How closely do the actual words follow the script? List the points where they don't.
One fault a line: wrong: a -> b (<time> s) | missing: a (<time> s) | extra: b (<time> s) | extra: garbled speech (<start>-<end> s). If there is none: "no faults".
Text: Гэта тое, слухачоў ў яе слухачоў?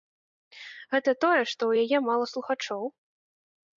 wrong: слухачоў -> што (1.5 s)
extra: мала (2.1 s)